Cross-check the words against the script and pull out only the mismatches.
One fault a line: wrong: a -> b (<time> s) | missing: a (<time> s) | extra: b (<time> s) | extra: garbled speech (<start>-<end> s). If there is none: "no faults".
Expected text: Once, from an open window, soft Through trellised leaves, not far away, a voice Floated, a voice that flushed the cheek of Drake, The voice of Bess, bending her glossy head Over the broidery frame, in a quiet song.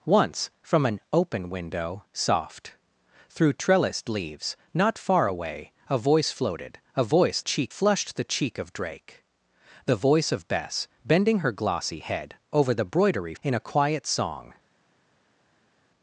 wrong: that -> cheek (7.4 s)
missing: frame (13.3 s)